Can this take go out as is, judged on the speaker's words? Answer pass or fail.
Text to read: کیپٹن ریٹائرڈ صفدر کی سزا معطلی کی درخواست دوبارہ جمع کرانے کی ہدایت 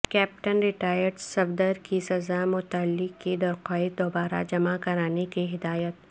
pass